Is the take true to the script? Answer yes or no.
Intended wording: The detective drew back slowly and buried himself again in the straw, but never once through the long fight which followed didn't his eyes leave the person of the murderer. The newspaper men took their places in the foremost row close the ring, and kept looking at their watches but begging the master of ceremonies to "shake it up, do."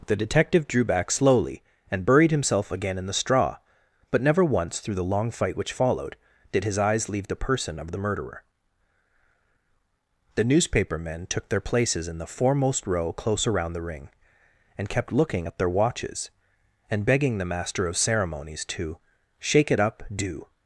no